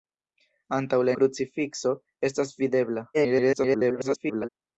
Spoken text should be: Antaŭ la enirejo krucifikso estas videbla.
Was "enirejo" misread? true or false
true